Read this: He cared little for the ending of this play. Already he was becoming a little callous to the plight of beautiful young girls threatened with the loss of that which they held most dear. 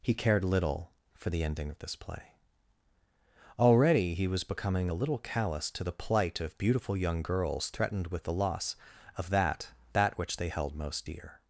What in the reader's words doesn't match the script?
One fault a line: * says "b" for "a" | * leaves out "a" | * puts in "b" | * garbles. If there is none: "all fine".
* puts in "that"